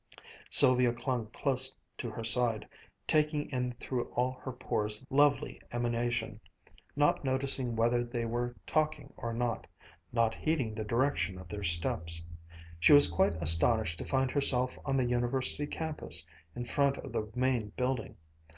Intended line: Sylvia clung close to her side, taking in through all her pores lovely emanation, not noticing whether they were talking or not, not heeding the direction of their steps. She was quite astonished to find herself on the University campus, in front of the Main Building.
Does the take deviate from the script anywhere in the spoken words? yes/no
no